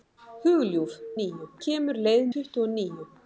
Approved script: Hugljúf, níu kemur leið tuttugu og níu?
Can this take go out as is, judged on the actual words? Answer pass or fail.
pass